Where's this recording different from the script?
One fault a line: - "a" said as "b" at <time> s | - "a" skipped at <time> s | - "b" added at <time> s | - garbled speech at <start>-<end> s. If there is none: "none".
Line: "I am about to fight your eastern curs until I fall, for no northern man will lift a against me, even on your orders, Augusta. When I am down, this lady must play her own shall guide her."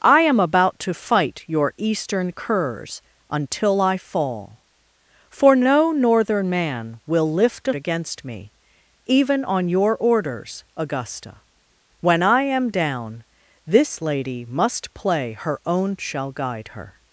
none